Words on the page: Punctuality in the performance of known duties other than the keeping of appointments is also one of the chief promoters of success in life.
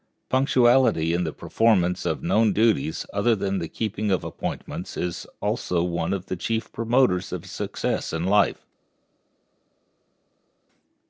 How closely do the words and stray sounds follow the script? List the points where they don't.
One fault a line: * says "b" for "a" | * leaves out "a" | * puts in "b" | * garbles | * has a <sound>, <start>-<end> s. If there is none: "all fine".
all fine